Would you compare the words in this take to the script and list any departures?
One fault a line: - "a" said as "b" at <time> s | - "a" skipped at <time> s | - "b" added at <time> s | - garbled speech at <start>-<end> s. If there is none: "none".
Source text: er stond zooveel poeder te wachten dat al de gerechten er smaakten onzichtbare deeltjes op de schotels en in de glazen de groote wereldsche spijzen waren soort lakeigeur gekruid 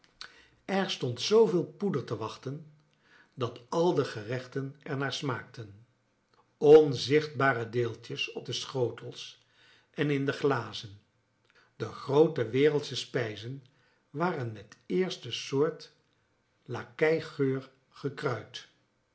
- "naar" added at 5.0 s
- "met eerste" added at 14.5 s